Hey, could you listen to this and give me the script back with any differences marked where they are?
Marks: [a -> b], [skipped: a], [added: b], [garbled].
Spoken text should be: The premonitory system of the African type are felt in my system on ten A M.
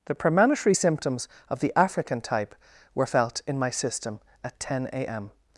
The premonitory [system -> symptoms] of the African type [are -> were] felt in my system [on -> at] ten A M.